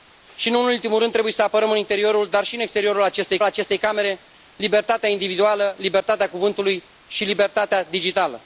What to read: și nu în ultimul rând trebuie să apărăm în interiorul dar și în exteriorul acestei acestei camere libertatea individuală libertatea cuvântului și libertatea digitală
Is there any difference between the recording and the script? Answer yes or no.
no